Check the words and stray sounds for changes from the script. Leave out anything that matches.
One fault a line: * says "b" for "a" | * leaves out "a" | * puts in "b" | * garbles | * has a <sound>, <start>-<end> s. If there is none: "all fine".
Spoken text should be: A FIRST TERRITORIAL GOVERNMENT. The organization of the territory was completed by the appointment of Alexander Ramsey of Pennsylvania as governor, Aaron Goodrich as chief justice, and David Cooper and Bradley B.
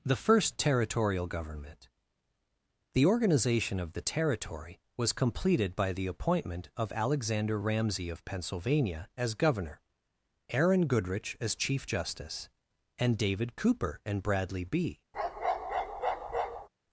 * says "THE" for "A"
* has a bark, 15.1-16.7 s